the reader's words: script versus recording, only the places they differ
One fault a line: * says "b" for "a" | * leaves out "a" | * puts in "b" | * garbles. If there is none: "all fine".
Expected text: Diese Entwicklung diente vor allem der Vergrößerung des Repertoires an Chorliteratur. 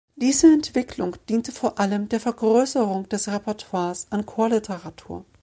all fine